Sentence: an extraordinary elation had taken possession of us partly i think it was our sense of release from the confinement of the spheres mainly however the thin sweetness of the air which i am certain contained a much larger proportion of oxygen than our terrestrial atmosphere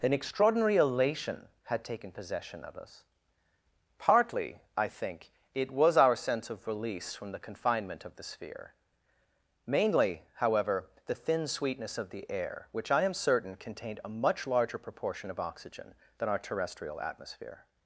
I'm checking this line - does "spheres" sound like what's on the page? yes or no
no